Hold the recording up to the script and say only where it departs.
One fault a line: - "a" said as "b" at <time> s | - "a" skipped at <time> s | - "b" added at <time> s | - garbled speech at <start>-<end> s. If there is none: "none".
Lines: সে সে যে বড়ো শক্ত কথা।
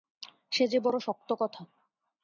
- "সে" skipped at 0.6 s